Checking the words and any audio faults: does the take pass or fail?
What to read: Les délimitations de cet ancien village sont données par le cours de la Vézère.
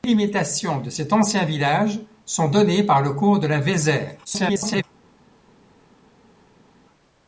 fail